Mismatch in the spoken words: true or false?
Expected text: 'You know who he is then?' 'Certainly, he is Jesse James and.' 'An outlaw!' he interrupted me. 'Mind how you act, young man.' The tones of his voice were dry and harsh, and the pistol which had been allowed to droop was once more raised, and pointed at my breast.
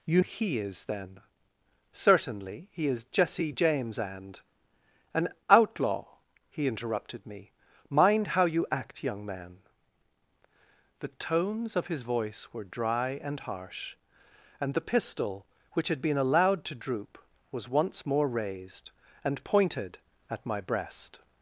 true